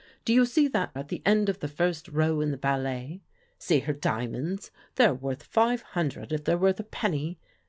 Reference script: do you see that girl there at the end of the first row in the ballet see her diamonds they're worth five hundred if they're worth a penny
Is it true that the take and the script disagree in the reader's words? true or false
true